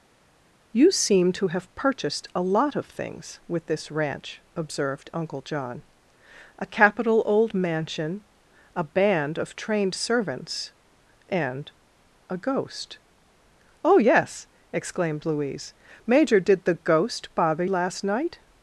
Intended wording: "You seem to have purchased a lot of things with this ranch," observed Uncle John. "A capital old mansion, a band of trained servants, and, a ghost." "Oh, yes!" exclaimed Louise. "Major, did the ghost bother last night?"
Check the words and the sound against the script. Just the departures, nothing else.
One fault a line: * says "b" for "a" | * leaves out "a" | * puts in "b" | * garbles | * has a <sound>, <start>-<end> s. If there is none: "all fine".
all fine